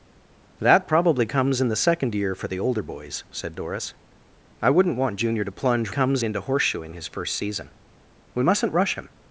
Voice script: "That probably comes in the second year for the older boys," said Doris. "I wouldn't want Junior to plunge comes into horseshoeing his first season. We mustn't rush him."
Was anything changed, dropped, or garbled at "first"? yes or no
no